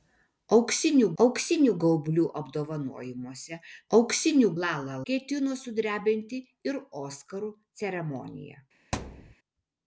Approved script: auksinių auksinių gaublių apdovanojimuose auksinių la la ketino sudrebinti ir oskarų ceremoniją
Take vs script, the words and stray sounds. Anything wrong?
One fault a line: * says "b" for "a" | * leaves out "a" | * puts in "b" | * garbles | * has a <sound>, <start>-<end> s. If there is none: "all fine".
* has a thud, 8.9-9.4 s